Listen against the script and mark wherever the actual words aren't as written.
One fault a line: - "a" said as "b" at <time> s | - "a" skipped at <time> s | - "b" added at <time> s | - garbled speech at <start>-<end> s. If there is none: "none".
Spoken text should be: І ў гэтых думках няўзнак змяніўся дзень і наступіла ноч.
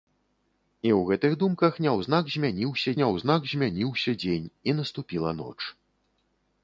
- "няўзнак змяніўся" added at 3.0 s